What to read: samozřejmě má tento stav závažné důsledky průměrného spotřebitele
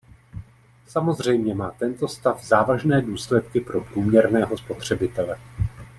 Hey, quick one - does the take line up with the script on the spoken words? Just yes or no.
no